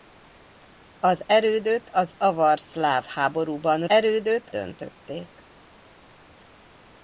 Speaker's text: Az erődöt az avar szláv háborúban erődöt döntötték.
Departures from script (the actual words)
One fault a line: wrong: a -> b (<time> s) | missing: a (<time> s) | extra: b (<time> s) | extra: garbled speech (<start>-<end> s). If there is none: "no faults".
no faults